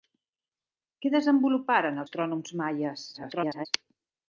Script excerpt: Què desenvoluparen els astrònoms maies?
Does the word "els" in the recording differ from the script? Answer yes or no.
yes